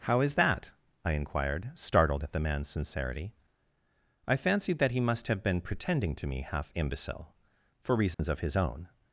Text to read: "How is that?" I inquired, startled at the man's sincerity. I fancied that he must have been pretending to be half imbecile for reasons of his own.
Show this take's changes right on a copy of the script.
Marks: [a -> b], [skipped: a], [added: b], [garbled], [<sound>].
"How is that?" I inquired, startled at the man's sincerity. I fancied that he must have been pretending to [be -> me] half imbecile for reasons [dropout] of his own.